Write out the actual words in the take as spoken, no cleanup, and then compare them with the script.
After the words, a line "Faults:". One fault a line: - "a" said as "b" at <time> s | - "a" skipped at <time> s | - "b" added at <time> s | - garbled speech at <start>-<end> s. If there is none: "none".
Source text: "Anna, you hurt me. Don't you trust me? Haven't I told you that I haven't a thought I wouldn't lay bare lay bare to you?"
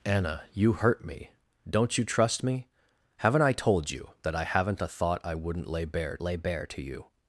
"Anna, you hurt me. Don't you trust me? Haven't I told you that I haven't a thought I wouldn't lay bare lay bare to you?"
Faults:
none